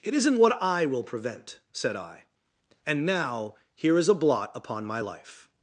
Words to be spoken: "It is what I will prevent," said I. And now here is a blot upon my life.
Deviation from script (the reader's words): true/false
true